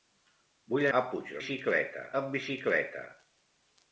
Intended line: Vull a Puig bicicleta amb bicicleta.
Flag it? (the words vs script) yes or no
no